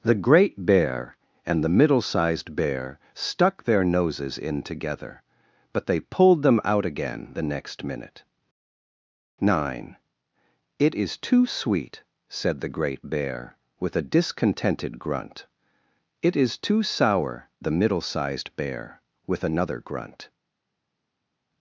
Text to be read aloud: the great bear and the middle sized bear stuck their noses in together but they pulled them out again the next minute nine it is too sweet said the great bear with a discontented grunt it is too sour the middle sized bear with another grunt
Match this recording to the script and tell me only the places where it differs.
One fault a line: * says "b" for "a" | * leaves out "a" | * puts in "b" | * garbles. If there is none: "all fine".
all fine